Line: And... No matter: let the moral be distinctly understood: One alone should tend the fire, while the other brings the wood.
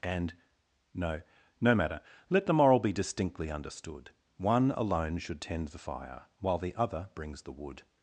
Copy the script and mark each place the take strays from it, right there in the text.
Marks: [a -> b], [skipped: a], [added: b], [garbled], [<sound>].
And... No [added: no] matter: let the moral be distinctly understood: One alone should tend the fire, while the other brings the wood.